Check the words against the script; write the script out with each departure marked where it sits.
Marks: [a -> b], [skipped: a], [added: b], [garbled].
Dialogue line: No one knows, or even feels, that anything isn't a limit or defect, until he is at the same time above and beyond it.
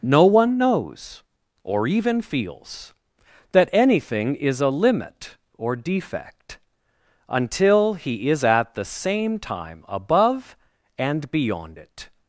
No one knows, or even feels, that anything [isn't -> is] a limit or defect, until he is at the same time above and beyond it.